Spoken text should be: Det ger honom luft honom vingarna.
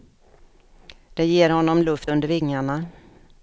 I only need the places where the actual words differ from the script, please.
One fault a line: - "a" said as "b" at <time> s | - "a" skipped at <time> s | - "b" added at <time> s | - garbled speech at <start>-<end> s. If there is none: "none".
- "honom" said as "under" at 2.1 s